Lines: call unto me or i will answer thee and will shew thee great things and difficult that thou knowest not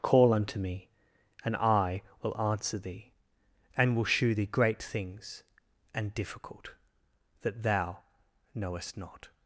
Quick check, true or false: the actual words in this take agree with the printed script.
false